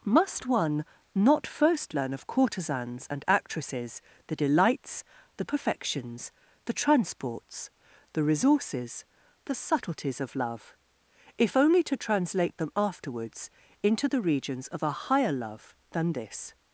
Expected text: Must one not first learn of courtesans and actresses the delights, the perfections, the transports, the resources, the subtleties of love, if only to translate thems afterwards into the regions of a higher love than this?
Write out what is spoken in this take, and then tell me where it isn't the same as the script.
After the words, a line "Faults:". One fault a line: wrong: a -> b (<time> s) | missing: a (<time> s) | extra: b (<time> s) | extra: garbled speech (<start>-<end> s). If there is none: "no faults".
Must one not first learn of courtesans and actresses the delights, the perfections, the transports, the resources, the subtleties of love, if only to translate them afterwards into the regions of a higher love than this?
Faults:
wrong: thems -> them (12.6 s)